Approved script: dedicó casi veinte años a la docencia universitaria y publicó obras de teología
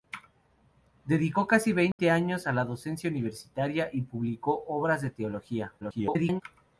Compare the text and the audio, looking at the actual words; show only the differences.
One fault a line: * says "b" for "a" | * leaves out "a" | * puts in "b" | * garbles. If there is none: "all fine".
* garbles